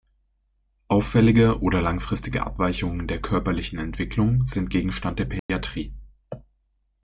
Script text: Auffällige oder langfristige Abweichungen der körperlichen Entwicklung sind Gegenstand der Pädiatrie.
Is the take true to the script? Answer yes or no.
yes